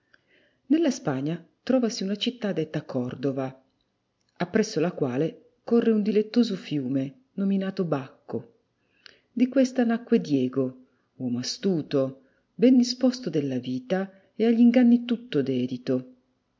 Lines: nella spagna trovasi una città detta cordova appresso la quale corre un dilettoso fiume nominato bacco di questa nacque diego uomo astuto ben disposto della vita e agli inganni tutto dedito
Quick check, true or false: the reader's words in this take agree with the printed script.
true